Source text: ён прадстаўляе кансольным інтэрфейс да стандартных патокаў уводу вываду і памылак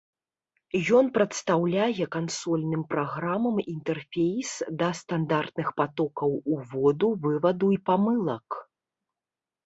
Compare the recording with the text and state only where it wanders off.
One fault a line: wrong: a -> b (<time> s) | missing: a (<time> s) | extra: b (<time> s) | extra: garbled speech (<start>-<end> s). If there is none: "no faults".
extra: праграмам (2.9 s)